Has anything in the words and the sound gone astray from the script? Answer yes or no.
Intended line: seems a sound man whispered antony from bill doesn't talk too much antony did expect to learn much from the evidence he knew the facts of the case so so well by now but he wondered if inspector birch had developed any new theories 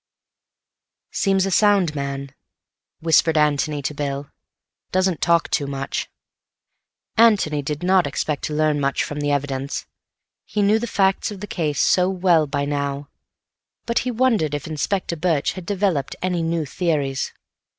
yes